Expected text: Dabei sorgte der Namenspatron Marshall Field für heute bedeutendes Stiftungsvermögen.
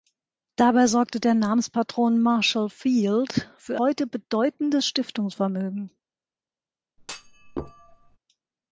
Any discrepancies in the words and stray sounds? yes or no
yes